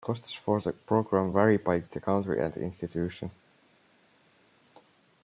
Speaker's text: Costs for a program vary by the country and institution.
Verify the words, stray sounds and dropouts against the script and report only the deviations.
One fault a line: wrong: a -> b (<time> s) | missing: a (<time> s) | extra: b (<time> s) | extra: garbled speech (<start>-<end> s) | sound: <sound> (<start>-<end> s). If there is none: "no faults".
wrong: a -> the (0.6 s)